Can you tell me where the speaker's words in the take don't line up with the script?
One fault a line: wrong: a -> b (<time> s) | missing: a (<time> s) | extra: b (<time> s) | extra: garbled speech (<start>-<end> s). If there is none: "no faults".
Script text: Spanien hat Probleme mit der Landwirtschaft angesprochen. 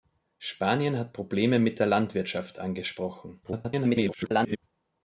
extra: garbled speech (3.4-4.6 s)